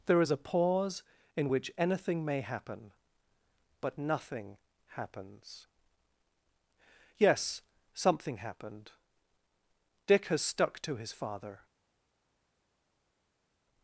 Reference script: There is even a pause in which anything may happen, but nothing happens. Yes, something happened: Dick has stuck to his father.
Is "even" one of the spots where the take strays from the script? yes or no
yes